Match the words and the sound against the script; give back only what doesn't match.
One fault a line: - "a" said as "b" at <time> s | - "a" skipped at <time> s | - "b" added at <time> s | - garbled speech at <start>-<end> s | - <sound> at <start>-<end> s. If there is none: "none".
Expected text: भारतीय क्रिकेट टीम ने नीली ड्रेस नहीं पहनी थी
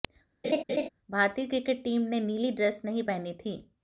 - laugh at 0.4-0.9 s